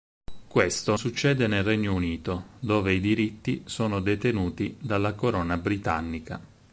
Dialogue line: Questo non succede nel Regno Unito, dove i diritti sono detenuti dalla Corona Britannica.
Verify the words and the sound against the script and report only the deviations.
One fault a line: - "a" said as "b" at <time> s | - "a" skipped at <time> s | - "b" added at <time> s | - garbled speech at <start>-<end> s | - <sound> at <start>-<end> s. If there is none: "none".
- "non" skipped at 0.9 s